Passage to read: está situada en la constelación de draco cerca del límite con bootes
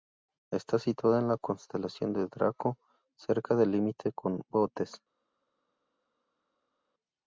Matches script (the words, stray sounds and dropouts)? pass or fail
pass